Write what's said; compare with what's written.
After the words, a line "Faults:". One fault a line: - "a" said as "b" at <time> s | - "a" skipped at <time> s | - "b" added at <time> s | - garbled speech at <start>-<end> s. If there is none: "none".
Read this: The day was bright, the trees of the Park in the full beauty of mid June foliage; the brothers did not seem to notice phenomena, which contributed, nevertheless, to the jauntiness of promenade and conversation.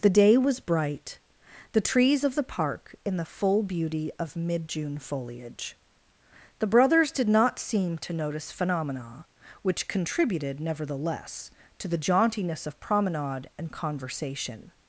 The day was bright, the trees of the Park in the full beauty of mid June foliage; the brothers did not seem to notice phenomena, which contributed, nevertheless, to the jauntiness of promenade and conversation.
Faults:
none